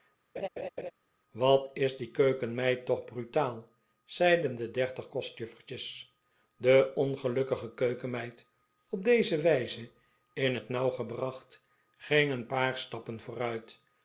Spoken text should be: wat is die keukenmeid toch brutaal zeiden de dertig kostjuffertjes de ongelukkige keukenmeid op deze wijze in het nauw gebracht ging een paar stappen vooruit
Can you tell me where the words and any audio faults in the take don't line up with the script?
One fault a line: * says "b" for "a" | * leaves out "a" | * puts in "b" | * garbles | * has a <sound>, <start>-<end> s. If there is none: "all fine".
* has a laugh, 0.4-0.9 s